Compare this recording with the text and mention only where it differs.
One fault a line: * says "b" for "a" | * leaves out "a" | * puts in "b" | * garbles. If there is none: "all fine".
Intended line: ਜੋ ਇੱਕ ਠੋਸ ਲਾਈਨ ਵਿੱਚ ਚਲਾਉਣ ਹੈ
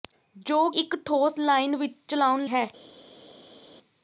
all fine